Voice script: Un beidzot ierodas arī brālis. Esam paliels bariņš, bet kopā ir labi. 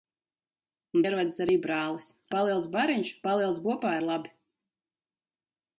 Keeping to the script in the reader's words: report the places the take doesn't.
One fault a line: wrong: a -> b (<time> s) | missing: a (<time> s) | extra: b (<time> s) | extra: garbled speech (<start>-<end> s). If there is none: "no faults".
missing: beidzot (1.0 s)
missing: Esam (2.1 s)
wrong: bet -> paliels (3.3 s)